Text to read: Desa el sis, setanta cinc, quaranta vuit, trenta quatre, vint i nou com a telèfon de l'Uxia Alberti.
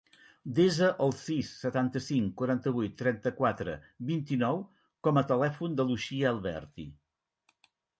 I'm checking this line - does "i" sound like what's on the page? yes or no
yes